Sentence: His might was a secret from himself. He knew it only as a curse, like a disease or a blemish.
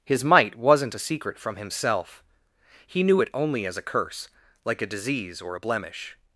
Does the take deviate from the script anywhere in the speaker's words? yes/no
yes